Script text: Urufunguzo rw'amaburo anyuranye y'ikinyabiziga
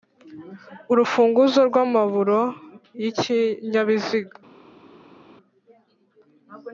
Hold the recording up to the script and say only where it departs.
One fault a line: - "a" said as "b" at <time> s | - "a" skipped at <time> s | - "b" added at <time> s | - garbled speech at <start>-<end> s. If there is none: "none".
- "anyuranye" skipped at 2.4 s